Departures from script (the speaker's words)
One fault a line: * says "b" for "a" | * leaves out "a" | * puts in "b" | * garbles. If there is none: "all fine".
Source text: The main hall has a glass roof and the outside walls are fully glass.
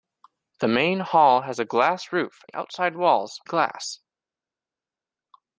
* leaves out "and"
* leaves out "are fully"